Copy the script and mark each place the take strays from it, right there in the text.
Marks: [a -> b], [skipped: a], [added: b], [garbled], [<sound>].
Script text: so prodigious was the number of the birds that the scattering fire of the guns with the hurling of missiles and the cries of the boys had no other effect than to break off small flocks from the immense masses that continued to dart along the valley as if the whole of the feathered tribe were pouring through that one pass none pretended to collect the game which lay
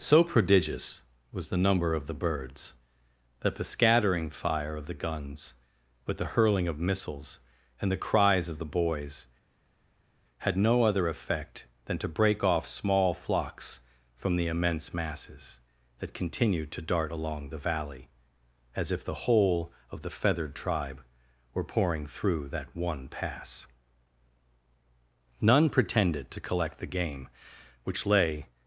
so prodigious was the number of the birds that the scattering fire of the guns with the hurling of missiles and the cries of the boys had no other effect than to break off small flocks from the immense masses that continued to dart along the valley as if the whole of the feathered tribe were pouring through that one pass none pretended to collect the game which lay